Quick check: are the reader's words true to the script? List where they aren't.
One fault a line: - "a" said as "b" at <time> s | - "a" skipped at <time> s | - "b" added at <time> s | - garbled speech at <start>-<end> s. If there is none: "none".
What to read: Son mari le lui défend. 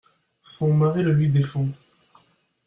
none